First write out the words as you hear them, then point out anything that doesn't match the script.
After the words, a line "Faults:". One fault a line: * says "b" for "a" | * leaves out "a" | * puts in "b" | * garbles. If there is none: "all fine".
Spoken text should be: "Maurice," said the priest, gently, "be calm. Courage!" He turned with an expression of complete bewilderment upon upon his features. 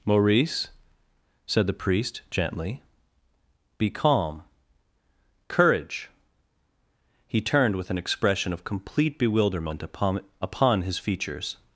"Maurice," said the priest, gently, "be calm. Courage!" He turned with an expression of complete bewilderment upon upon his features.
Faults:
all fine